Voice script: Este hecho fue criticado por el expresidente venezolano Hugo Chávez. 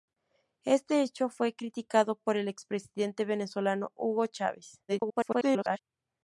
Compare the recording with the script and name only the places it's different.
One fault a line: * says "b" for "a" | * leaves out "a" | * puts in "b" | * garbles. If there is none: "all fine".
* garbles